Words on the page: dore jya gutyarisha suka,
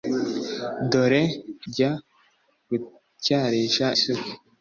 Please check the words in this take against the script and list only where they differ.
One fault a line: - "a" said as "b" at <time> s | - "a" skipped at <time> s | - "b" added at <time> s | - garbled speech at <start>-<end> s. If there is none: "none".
none